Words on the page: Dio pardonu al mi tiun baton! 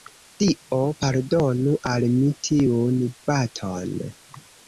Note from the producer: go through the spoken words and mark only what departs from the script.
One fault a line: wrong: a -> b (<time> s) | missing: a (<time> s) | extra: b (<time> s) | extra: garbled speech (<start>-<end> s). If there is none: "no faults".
no faults